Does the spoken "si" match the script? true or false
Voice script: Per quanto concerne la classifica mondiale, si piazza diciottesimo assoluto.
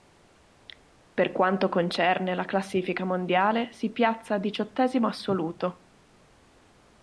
true